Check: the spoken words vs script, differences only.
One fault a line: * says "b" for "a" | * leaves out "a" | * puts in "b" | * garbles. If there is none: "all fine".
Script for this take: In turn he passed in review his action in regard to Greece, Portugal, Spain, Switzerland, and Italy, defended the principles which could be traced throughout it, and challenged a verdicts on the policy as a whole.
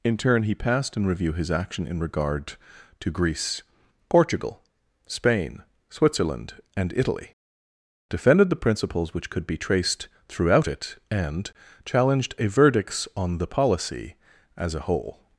all fine